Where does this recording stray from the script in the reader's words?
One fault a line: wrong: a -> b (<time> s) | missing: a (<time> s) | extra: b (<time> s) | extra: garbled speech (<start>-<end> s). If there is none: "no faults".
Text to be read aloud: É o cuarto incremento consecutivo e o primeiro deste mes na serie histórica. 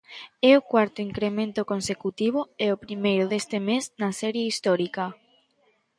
no faults